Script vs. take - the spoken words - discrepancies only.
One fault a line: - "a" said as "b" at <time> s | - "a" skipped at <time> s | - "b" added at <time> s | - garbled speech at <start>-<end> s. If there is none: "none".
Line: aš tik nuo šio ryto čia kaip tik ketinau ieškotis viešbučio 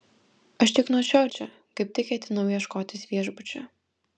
- "ryto" skipped at 1.2 s